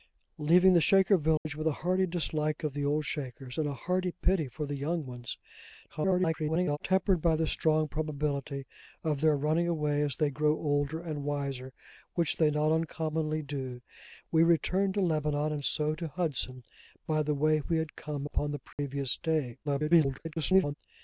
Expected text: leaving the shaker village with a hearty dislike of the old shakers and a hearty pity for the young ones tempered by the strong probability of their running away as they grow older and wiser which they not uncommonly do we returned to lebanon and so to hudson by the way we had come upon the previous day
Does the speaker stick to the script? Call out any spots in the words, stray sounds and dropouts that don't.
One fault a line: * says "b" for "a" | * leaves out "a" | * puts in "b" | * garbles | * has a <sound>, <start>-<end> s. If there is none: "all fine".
* has a dropout, 1.4-1.5 s
* garbles
* has a dropout, 18.7-18.8 s
* garbles